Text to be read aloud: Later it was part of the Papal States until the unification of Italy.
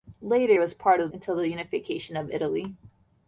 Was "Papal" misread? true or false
true